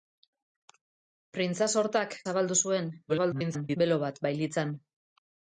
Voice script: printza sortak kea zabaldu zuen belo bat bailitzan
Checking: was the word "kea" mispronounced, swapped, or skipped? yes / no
yes